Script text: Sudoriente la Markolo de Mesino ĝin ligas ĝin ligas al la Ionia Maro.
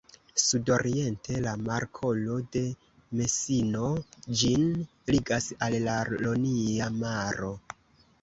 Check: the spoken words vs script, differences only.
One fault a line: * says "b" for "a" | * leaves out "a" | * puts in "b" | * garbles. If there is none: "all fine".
* leaves out "ĝin ligas"